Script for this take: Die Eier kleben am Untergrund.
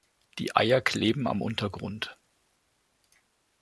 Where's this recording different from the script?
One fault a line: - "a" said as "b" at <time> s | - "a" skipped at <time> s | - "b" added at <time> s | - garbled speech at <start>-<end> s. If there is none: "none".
none